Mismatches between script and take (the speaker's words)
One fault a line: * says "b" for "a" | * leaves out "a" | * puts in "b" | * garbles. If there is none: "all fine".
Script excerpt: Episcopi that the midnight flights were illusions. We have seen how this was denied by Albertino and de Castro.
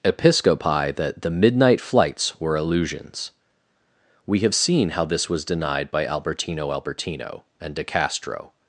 * puts in "Albertino"